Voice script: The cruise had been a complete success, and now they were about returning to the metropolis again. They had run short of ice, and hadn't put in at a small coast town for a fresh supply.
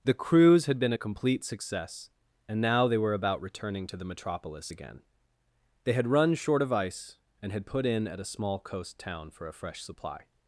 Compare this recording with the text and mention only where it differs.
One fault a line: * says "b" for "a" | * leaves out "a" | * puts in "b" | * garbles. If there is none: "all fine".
* says "had" for "hadn't"